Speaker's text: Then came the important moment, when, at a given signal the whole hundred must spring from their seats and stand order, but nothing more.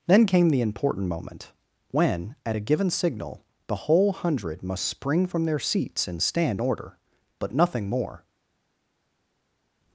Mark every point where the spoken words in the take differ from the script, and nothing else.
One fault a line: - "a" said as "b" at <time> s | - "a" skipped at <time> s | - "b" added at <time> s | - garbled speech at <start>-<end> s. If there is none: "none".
none